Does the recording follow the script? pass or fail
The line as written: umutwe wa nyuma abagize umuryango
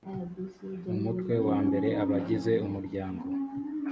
fail